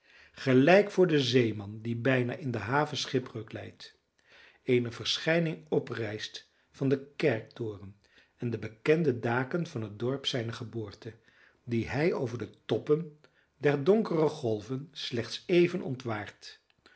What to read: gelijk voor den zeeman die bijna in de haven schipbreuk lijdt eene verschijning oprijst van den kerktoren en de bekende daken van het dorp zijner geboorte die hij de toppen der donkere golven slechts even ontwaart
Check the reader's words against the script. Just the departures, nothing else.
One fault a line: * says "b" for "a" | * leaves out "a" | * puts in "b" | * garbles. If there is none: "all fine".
* puts in "over"